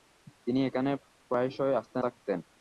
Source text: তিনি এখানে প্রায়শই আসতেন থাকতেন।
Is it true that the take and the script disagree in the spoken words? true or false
false